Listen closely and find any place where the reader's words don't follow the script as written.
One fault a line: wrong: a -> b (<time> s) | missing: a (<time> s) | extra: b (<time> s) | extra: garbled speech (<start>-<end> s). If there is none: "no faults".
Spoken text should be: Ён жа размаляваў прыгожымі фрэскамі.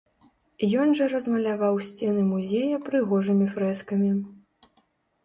extra: сцены музея (1.9 s)